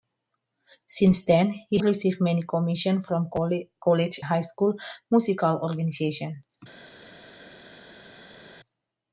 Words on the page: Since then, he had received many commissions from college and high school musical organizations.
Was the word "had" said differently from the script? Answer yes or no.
yes